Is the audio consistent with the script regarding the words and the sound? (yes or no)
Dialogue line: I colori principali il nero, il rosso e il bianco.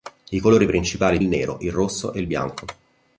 yes